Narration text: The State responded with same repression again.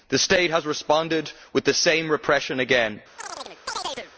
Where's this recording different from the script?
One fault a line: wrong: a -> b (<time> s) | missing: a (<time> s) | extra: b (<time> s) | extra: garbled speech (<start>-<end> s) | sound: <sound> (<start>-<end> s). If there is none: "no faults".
extra: has (0.5 s)
extra: the (1.6 s)
sound: chirp (3.2-4.1 s)